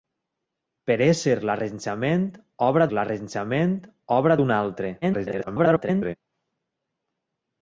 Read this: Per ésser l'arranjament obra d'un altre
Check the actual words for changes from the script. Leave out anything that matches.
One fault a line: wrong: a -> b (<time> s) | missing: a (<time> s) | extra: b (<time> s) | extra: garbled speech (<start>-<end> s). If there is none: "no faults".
extra: l'arranjament obra (3.0 s)
extra: garbled speech (5.0-6.2 s)